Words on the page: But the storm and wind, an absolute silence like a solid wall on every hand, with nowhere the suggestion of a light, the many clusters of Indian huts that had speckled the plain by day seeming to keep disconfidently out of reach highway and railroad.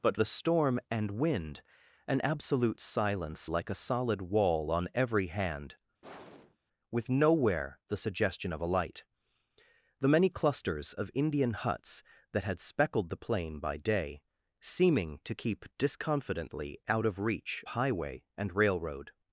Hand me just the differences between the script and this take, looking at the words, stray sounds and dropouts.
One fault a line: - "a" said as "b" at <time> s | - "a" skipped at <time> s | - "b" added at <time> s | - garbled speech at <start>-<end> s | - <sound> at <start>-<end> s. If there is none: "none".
- sigh at 6.0-6.6 s